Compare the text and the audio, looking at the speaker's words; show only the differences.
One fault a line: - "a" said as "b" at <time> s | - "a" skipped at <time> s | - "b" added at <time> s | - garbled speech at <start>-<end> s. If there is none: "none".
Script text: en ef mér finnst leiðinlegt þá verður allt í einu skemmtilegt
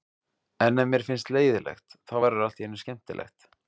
none